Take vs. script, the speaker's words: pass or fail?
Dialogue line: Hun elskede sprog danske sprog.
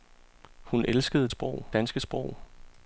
pass